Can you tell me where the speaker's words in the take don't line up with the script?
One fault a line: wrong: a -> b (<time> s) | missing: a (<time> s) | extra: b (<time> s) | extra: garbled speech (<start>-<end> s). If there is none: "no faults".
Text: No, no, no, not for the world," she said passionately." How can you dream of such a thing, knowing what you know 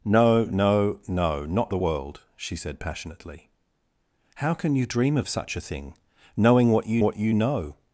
missing: for (1.7 s)
extra: what you (7.0 s)